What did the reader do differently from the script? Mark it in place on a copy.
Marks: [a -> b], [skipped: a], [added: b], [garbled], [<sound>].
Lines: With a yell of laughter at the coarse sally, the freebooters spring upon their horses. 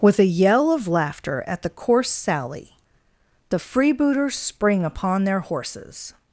With a yell of laughter at the coarse sally, the freebooters spring upon their horses.